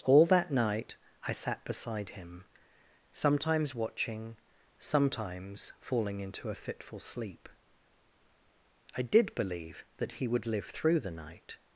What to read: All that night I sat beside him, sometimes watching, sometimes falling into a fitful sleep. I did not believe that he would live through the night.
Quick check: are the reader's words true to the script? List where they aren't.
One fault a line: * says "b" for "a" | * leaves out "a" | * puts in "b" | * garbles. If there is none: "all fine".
* leaves out "not"